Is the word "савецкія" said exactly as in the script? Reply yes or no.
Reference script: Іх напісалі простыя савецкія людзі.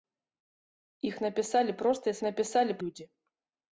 no